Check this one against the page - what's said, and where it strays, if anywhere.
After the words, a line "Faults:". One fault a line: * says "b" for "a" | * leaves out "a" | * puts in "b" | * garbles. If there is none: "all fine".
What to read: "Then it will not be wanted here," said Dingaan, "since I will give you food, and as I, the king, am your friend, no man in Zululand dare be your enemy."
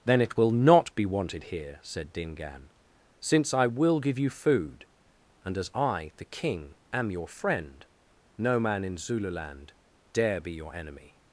"Then it will not be wanted here," said Dingaan, "since I will give you food, and as I, the king, am your friend, no man in Zululand dare be your enemy."
Faults:
all fine